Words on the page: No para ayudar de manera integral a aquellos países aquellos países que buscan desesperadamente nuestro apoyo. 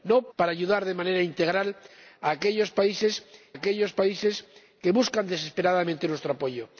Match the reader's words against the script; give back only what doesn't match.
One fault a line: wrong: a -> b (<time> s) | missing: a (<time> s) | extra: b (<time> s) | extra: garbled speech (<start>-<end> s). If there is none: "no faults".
no faults